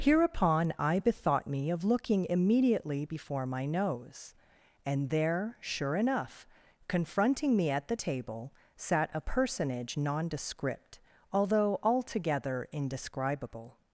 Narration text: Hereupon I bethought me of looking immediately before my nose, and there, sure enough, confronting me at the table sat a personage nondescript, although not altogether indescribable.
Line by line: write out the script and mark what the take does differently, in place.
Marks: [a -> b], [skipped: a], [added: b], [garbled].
Hereupon I bethought me of looking immediately before my nose, and there, sure enough, confronting me at the table sat a personage nondescript, although [skipped: not] altogether indescribable.